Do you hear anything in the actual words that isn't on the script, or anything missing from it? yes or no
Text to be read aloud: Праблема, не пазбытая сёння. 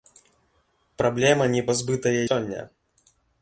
no